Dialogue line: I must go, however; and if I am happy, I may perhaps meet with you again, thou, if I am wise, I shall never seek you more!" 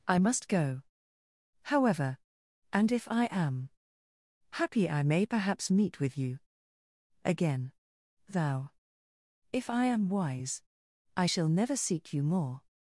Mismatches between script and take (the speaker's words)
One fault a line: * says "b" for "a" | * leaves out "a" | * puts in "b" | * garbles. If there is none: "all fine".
all fine